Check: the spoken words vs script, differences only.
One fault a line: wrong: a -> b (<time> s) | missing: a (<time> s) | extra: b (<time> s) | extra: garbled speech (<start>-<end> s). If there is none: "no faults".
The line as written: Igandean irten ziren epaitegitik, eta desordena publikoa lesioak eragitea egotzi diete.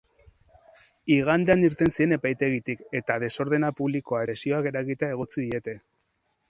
no faults